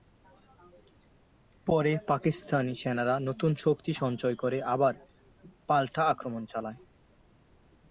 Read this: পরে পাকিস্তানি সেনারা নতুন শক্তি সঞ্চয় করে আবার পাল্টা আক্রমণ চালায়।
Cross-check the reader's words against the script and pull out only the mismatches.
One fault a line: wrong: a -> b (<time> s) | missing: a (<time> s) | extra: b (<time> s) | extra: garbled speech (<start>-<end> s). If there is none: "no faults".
no faults